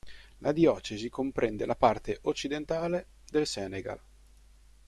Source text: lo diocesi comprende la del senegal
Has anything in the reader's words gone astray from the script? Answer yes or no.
yes